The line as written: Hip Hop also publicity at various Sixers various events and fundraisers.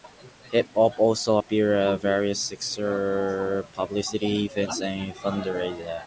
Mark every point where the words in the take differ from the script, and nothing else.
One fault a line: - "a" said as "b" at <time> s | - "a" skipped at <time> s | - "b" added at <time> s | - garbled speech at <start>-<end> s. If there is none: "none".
- "publicity" said as "appeared" at 1.3 s
- "various" said as "publicity" at 3.7 s